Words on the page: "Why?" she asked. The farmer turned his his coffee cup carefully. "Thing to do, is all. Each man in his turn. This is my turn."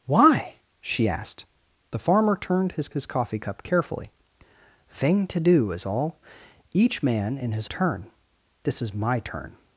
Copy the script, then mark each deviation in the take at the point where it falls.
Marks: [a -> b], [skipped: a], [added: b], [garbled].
"Why?" she asked. The farmer turned his his coffee cup carefully. "Thing to do, is all. Each man in his turn. This is my turn."